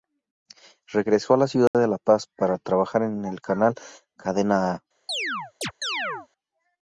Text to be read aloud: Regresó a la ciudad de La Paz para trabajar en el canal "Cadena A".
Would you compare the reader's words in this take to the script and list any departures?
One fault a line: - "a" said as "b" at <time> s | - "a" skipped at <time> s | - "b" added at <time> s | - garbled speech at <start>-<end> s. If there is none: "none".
none